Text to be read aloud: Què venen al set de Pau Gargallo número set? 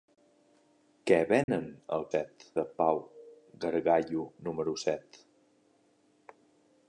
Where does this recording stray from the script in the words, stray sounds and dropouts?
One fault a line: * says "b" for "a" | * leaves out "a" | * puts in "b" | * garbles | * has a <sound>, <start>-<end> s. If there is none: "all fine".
* has a dropout, 1.4-1.5 s